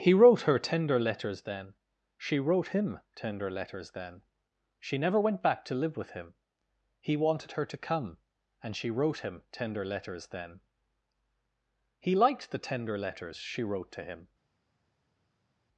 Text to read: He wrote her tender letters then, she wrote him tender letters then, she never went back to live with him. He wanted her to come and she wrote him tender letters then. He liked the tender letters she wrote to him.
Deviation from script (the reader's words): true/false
false